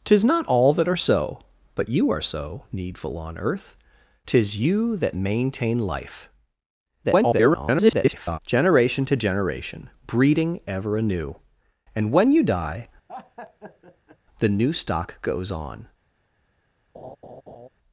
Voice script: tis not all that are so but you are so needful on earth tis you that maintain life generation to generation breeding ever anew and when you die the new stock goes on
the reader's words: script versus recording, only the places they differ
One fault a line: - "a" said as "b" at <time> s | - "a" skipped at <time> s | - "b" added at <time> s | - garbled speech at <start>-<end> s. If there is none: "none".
- garbled speech at 7.0-8.4 s